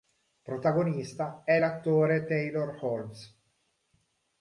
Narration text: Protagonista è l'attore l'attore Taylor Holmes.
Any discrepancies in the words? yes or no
yes